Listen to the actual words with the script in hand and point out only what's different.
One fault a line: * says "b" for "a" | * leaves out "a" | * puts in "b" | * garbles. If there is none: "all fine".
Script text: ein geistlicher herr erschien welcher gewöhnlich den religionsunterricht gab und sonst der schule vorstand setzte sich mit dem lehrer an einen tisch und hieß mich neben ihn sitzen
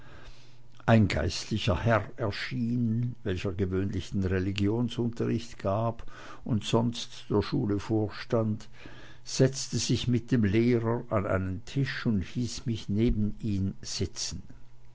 all fine